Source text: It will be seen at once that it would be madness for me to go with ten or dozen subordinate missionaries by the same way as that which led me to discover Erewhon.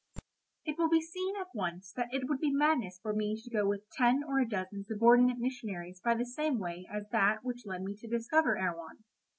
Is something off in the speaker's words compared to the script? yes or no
yes